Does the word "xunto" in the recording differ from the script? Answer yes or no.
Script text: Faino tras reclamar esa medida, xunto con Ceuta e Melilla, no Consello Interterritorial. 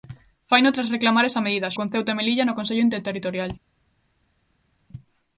yes